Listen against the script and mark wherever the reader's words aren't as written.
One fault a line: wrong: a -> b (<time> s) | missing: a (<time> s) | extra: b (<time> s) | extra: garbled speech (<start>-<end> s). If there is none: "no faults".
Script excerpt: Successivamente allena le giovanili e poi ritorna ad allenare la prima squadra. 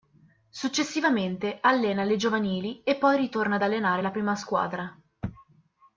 no faults